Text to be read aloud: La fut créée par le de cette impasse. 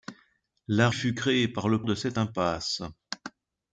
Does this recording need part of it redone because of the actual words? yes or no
no